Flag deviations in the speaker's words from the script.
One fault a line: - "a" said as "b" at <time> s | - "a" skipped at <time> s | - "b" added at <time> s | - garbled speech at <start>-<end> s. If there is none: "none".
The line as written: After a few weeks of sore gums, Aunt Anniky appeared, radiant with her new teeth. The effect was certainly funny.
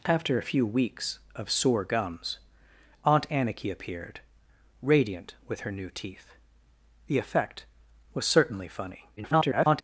- garbled speech at 9.2-9.8 s